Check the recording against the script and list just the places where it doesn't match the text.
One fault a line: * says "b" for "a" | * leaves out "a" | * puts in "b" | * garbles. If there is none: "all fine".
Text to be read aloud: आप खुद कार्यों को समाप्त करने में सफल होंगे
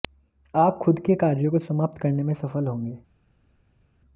* puts in "के"